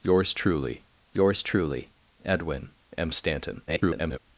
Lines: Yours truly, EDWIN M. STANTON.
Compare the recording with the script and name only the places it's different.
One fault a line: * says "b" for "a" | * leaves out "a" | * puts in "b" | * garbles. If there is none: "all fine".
* puts in "yours truly"
* garbles